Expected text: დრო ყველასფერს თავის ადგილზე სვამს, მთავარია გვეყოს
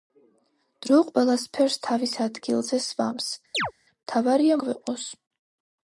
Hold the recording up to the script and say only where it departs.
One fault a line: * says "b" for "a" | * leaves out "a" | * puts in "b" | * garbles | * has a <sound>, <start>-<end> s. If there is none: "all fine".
* has a chirp, 3.5-3.7 s